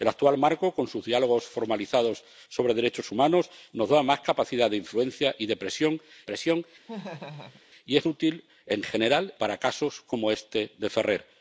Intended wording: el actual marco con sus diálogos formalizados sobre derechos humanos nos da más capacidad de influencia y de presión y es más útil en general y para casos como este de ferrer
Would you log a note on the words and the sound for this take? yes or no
yes